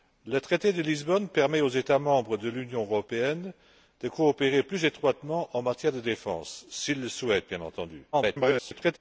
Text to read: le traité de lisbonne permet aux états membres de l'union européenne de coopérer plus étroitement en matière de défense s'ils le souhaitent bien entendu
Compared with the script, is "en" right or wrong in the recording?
right